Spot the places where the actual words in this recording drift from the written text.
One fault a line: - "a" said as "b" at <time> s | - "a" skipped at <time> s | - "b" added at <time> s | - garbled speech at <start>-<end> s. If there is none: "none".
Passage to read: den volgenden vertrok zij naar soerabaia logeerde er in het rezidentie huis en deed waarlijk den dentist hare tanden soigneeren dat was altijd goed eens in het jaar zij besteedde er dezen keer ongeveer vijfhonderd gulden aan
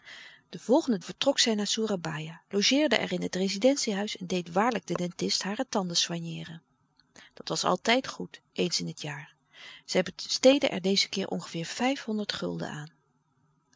none